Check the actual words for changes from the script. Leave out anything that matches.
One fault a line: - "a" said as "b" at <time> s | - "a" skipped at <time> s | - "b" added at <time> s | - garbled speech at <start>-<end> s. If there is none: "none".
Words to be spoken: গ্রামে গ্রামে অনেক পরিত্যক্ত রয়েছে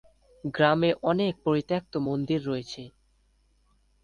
- "গ্রামে" skipped at 0.9 s
- "মন্দির" added at 2.1 s